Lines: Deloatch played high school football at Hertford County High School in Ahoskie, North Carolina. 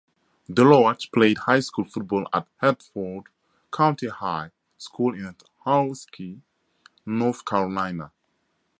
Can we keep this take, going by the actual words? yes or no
yes